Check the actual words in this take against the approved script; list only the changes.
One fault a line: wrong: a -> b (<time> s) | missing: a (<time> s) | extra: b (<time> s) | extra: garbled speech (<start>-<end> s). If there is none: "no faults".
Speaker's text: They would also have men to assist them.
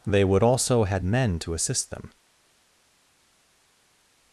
wrong: have -> had (0.8 s)